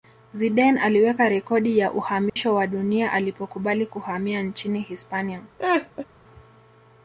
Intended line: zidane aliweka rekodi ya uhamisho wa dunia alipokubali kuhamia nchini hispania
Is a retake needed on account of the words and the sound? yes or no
yes